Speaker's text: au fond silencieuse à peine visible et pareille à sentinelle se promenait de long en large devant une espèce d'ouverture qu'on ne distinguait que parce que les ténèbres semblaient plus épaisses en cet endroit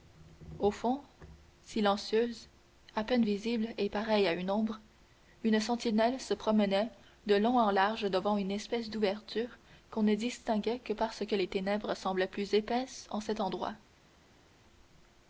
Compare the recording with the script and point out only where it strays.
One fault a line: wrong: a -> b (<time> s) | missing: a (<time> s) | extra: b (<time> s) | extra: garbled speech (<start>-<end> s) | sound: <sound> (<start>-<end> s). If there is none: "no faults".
extra: une ombre une (4.3 s)